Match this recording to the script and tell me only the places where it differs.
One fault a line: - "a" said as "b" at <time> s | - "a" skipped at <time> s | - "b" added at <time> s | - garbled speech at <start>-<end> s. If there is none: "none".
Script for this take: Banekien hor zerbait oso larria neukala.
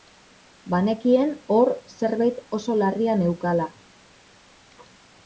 none